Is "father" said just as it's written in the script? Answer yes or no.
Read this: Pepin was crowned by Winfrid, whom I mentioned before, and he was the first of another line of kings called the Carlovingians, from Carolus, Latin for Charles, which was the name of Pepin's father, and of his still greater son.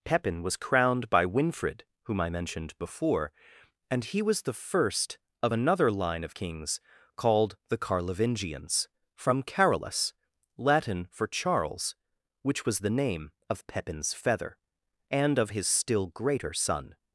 no